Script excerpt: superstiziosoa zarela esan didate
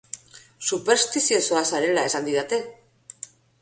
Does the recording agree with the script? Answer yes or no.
yes